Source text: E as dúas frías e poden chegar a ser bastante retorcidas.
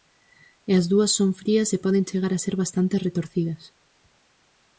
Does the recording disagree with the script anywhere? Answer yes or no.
yes